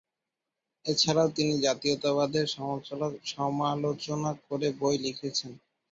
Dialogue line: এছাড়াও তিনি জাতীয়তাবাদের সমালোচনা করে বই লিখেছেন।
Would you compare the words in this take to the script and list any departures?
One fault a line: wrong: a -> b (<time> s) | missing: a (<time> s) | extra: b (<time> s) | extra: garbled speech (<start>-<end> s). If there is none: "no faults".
no faults